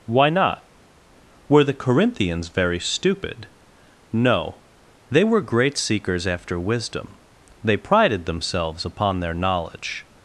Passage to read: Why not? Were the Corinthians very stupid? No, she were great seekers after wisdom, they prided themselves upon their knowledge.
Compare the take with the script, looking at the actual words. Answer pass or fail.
fail